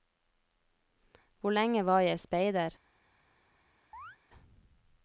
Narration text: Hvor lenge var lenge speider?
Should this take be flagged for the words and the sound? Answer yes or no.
yes